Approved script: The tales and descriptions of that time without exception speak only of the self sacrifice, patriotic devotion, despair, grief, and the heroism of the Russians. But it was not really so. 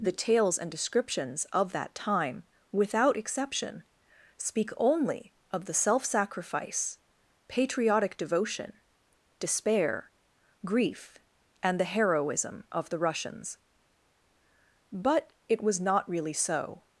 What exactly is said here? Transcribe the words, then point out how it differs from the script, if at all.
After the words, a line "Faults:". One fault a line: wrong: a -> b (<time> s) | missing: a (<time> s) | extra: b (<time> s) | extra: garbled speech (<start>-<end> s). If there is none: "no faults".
The tales and descriptions of that time without exception speak only of the self sacrifice, patriotic devotion, despair, grief, and the heroism of the Russians. But it was not really so.
Faults:
no faults